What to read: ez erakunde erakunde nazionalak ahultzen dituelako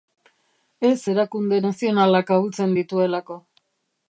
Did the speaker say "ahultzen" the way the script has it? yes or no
yes